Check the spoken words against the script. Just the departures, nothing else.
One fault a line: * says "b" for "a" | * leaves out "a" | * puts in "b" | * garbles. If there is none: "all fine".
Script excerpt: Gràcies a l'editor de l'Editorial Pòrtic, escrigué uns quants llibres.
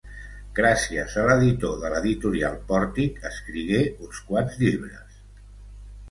all fine